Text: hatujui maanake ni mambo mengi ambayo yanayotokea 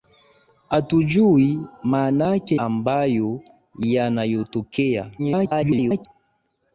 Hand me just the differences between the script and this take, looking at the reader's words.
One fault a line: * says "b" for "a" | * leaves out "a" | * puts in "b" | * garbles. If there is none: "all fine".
* leaves out "ni mambo mengi"
* garbles